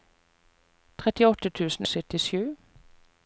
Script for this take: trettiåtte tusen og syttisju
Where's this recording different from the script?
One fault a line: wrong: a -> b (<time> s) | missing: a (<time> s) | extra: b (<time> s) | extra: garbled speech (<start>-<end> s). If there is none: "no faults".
no faults